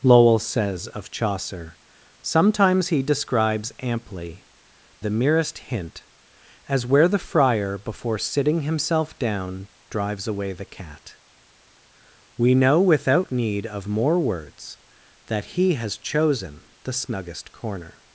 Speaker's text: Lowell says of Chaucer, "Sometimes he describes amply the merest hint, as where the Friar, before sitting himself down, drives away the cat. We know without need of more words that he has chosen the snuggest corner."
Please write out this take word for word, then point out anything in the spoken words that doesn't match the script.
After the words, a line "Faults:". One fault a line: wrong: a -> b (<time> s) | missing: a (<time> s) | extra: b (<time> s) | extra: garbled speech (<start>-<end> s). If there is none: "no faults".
Lowell says of Chaucer, "Sometimes he describes amply the merest hint, as where the Friar, before sitting himself down, drives away the cat. We know without need of more words that he has chosen the snuggest corner."
Faults:
no faults